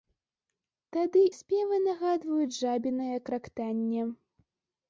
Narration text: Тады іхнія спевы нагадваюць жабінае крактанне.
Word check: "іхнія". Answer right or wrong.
wrong